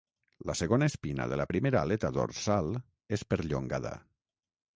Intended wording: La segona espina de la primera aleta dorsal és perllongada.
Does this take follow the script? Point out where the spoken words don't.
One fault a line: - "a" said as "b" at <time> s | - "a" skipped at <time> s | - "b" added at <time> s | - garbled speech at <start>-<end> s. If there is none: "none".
none